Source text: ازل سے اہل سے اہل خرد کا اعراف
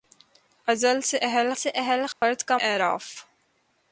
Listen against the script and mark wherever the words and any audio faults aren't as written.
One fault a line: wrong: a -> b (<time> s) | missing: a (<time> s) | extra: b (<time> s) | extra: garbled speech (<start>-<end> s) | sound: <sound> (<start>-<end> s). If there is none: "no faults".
sound: dropout (2.1-2.2 s)